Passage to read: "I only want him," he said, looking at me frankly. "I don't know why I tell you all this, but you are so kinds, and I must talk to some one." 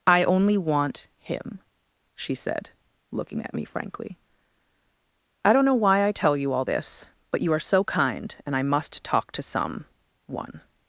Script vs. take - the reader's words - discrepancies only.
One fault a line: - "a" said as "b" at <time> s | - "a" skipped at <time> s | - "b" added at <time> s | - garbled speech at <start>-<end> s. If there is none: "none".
- "he" said as "she" at 2.1 s
- "kinds" said as "kind" at 7.8 s